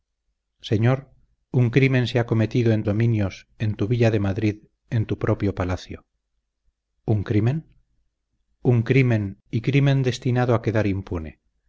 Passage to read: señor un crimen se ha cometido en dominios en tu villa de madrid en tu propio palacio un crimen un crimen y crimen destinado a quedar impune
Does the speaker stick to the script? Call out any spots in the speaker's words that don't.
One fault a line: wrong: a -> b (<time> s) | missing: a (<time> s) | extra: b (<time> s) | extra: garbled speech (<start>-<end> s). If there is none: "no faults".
no faults